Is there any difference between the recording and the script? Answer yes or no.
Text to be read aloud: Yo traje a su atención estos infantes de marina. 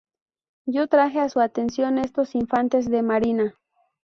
no